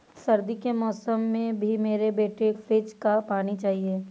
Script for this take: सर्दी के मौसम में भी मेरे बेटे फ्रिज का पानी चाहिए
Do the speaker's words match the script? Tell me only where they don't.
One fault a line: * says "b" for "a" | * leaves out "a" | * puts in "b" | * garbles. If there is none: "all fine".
all fine